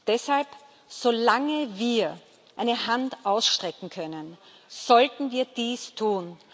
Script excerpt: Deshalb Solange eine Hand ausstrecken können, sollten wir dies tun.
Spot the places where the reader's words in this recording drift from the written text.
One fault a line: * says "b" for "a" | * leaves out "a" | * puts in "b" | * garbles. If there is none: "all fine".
* puts in "wir"